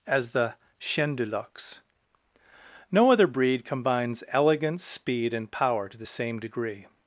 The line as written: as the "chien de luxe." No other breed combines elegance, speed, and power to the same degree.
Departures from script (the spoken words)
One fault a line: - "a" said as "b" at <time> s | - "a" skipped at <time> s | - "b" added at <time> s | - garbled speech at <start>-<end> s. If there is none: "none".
none